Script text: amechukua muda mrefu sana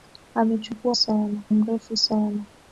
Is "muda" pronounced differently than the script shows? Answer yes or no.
yes